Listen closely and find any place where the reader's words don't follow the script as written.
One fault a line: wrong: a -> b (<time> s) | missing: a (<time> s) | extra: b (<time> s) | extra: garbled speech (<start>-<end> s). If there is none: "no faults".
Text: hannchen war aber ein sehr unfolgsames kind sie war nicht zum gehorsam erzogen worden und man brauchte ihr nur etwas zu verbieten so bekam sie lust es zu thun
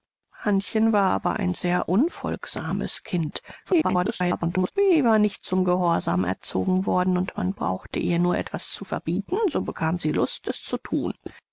extra: garbled speech (3.6-4.7 s)